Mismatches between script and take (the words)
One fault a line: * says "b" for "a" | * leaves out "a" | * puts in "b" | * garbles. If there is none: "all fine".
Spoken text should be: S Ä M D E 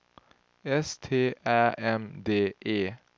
* puts in "T"